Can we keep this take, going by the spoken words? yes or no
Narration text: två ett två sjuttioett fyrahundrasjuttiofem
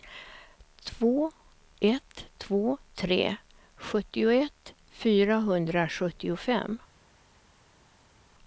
no